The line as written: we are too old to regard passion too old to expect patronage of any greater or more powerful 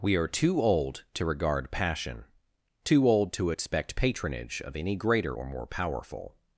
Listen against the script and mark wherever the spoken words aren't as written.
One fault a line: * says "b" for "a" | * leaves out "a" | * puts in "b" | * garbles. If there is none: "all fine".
all fine